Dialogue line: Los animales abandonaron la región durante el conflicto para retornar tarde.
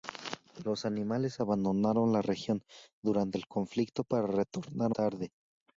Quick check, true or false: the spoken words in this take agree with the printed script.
true